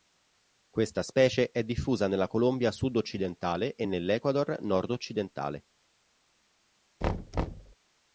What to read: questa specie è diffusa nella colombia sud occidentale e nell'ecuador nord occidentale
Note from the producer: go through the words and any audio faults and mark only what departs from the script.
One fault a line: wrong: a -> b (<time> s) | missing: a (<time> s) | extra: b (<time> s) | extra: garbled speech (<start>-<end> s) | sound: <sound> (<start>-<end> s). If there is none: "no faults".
sound: thud (7.0-7.8 s)